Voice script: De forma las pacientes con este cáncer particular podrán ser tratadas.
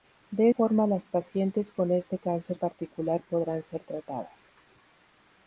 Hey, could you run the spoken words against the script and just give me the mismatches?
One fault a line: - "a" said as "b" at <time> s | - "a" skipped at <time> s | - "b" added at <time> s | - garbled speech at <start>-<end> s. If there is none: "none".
none